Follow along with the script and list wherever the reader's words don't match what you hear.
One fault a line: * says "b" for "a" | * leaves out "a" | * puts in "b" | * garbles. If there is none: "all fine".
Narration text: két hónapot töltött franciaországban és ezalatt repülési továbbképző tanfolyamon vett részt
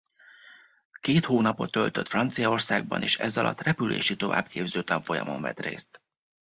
all fine